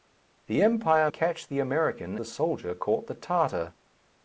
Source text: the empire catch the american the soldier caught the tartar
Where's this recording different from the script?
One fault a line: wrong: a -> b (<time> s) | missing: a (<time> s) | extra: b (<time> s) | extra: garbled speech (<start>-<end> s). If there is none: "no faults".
no faults